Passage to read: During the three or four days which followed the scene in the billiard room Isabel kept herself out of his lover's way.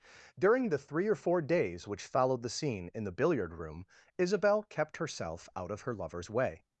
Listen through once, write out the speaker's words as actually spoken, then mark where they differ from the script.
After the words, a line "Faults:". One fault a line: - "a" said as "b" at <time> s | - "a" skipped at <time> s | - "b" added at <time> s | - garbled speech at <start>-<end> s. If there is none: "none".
During the three or four days which followed the scene in the billiard room Isabel kept herself out of her lover's way.
Faults:
- "his" said as "her" at 5.8 s